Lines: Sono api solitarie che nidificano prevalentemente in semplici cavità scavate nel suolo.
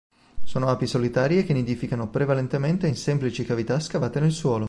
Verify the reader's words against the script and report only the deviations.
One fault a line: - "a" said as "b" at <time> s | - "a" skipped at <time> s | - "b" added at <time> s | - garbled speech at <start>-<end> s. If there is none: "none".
none